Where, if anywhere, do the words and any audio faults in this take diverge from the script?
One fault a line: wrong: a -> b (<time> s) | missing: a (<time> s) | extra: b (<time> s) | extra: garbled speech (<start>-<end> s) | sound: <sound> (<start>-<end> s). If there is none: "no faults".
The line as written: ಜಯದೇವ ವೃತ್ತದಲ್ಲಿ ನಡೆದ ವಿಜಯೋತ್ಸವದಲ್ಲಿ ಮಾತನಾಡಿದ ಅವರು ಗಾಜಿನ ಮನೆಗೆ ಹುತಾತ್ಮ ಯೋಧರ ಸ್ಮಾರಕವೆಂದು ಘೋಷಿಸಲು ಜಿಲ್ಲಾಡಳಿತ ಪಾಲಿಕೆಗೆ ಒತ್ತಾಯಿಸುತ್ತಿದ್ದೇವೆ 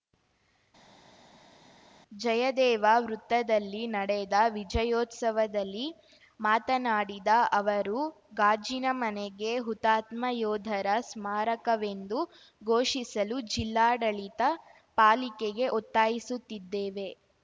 no faults